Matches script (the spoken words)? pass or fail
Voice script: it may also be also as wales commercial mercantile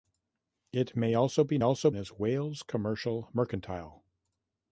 pass